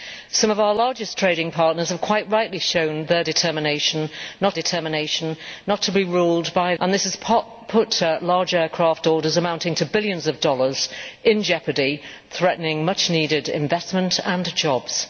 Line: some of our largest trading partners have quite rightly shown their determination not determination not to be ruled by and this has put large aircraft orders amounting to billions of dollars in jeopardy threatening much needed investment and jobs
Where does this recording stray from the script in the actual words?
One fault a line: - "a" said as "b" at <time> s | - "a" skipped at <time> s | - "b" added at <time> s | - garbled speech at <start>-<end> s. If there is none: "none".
none